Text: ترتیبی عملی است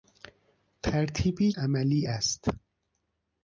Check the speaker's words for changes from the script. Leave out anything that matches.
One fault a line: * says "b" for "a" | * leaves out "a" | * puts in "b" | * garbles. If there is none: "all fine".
all fine